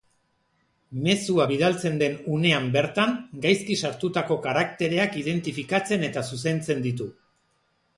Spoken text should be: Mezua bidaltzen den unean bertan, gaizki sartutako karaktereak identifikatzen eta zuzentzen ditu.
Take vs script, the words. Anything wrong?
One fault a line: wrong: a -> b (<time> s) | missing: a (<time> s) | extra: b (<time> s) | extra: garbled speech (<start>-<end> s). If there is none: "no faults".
no faults